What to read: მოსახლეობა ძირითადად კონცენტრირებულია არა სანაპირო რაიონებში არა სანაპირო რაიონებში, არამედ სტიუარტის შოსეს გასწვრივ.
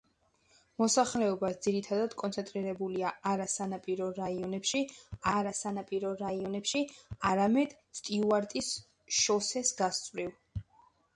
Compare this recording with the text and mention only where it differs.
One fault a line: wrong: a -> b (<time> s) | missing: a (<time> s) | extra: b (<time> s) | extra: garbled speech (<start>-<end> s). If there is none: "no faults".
no faults